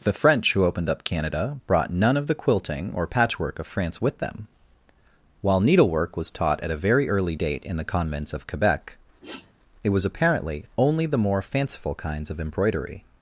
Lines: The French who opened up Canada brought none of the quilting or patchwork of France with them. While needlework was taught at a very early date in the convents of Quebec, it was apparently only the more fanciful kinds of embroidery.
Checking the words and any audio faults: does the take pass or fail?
fail